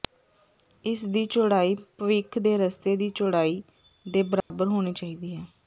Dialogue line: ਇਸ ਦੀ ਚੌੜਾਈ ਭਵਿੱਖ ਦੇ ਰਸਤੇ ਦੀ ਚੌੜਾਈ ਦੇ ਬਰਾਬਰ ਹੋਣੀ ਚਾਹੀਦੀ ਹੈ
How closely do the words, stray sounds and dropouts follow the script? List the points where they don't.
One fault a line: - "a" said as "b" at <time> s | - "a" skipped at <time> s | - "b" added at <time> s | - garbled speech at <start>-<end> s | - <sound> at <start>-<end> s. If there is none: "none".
- dropout at 4.4-4.5 s